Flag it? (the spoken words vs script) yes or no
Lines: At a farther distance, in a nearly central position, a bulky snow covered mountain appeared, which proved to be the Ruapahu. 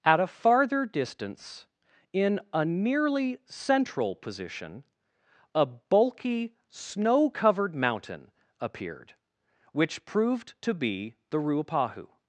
no